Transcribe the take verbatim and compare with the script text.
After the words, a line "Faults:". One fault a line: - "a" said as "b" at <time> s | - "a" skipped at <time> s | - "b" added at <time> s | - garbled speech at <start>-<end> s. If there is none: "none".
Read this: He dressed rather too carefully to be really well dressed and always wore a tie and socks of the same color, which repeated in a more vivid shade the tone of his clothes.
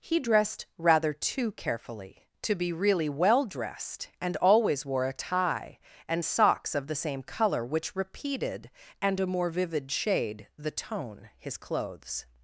He dressed rather too carefully to be really well dressed and always wore a tie and socks of the same color, which repeated and a more vivid shade the tone his clothes.
Faults:
- "in" said as "and" at 9.0 s
- "of" skipped at 11.3 s